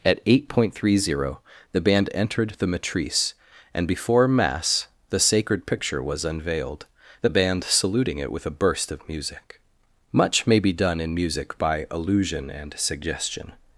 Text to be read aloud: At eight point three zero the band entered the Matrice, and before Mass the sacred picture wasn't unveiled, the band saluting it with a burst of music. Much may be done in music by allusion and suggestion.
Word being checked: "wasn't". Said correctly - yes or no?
no